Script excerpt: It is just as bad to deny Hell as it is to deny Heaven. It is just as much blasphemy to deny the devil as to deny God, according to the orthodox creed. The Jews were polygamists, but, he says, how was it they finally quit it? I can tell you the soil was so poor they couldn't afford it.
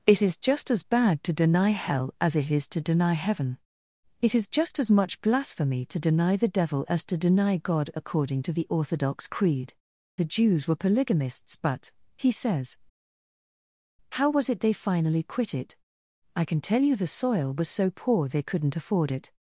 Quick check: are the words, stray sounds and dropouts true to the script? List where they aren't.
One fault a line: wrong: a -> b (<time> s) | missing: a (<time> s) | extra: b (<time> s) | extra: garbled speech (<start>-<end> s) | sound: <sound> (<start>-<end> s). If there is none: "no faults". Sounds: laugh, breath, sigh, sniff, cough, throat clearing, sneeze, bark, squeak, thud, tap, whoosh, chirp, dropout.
no faults